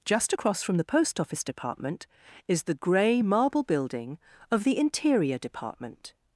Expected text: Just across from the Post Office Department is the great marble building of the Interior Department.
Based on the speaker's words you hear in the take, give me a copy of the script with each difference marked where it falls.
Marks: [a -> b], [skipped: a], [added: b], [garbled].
Just across from the Post Office Department is the [great -> grey] marble building of the Interior Department.